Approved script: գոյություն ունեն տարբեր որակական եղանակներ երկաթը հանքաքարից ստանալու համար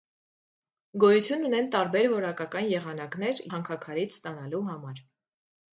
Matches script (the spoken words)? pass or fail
fail